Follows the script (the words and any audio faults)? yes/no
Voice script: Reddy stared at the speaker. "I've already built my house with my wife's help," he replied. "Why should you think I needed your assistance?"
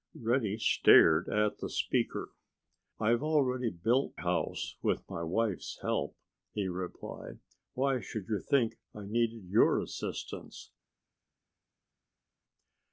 no